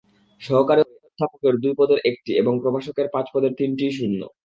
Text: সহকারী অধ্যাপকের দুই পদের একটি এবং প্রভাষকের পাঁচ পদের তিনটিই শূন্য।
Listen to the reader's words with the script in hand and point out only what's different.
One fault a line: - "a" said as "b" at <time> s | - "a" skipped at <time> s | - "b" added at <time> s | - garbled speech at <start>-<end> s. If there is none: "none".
none